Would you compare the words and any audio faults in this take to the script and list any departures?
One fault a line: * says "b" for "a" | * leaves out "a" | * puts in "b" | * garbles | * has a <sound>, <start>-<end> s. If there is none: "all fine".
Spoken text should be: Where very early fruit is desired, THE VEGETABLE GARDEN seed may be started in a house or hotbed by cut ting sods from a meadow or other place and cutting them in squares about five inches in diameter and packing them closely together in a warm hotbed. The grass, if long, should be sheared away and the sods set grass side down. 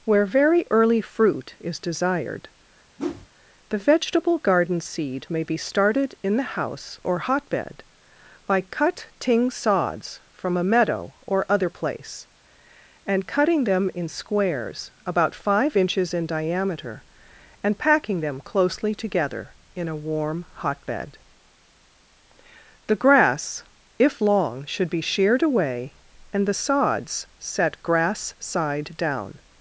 * has a whoosh, 3.0-3.3 s
* says "the" for "a"